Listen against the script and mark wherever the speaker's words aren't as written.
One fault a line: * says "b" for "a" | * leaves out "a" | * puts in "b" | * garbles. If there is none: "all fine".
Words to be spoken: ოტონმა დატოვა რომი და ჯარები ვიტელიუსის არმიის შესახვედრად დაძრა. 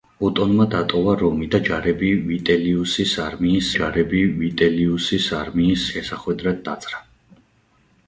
* puts in "ჯარები ვიტელიუსის არმიის"